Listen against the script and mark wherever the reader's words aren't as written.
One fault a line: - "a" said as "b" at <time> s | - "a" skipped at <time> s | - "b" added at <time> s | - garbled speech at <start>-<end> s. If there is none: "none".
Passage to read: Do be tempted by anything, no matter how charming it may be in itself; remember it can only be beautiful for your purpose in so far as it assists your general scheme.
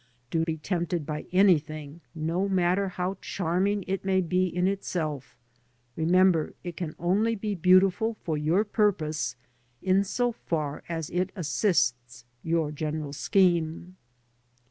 none